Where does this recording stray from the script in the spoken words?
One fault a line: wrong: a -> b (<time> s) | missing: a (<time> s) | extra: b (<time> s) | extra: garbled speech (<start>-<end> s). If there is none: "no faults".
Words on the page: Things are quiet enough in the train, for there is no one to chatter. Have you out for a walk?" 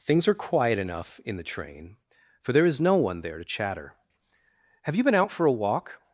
extra: there (3.2 s)
extra: been (5.0 s)